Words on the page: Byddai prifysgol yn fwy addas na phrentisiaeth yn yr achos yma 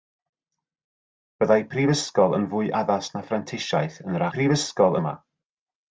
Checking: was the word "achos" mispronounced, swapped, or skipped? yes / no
yes